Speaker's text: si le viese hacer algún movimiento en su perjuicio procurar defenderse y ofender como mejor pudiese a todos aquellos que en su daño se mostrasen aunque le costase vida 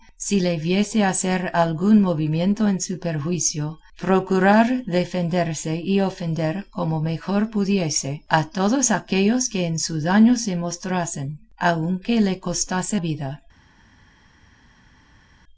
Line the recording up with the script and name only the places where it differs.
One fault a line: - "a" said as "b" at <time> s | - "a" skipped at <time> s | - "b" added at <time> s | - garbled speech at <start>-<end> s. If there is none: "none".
none